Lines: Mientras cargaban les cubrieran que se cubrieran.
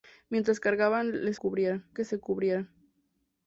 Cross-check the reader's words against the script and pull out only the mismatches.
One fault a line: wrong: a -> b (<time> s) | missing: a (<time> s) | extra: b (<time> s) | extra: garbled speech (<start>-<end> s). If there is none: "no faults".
no faults